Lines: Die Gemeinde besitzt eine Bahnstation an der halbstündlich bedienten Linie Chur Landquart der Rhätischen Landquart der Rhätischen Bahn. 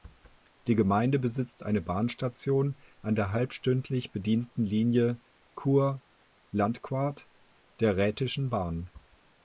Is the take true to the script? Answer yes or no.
no